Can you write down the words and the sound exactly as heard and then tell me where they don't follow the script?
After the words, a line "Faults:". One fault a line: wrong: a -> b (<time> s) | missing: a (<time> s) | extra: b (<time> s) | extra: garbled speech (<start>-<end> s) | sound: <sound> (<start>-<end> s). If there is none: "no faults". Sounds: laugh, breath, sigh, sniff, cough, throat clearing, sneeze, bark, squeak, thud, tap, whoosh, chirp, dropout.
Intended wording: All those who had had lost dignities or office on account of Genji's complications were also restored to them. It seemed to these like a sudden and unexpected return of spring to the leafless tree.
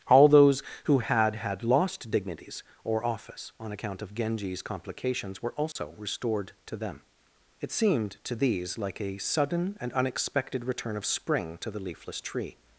All those who had had lost dignities or office on account of Genji's complications were also restored to them. It seemed to these like a sudden and unexpected return of spring to the leafless tree.
Faults:
sound: dropout (5.7-5.8 s)